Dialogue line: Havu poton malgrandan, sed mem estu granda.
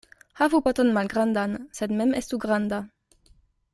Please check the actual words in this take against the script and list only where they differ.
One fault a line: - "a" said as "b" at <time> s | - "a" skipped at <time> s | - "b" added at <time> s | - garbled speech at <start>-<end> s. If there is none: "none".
none